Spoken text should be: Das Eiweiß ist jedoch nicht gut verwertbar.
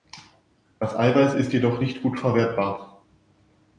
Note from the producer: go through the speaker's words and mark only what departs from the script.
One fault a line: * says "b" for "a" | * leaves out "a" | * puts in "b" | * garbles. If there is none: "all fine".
all fine